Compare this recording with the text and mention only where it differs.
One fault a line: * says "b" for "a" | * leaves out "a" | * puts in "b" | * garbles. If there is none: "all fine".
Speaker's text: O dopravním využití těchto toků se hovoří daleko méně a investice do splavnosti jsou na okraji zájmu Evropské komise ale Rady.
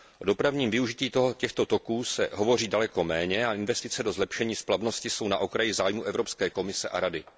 * puts in "zlepšení"
* says "a" for "ale"